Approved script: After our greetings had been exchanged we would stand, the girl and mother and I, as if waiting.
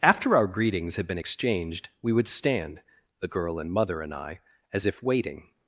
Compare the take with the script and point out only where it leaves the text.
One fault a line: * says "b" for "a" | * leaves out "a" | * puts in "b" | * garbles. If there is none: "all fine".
all fine